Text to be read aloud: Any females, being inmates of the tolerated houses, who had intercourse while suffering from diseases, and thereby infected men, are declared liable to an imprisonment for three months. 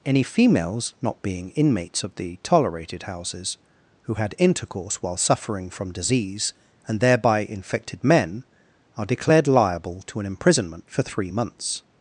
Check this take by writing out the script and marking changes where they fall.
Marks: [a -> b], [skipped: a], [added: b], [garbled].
Any females, [added: not] being inmates of the tolerated houses, who had intercourse while suffering from [diseases, -> disease] and thereby infected men, are declared liable to an imprisonment for three months.